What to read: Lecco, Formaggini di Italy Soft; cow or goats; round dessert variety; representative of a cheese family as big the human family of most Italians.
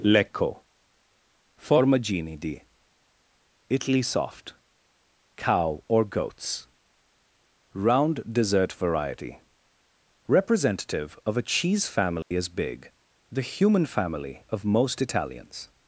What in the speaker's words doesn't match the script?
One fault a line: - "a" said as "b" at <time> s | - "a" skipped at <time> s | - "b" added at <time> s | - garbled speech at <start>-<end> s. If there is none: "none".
none